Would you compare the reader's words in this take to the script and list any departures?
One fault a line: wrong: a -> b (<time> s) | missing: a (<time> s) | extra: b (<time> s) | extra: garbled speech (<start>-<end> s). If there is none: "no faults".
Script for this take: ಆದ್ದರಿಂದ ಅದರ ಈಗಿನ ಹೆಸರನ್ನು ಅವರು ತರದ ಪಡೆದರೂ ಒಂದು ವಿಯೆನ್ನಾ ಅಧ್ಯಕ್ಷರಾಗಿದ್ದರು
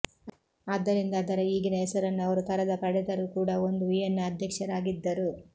extra: ಕೂಡ (3.4 s)